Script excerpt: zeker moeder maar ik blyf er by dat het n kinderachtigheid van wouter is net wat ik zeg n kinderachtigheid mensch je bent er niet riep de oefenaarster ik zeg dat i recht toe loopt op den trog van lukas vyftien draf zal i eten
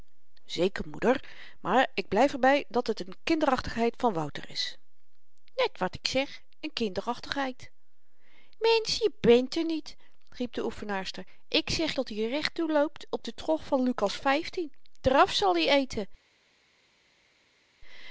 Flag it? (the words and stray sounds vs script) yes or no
no